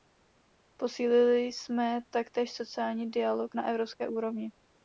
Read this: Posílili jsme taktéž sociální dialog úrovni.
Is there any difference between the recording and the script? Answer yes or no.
yes